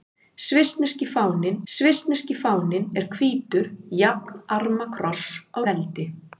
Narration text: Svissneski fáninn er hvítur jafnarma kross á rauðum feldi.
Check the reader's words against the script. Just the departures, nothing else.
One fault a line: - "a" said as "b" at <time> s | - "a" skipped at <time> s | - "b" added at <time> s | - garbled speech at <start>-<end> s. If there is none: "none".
- "svissneski fáninn" added at 1.7 s
- "rauðum" skipped at 5.6 s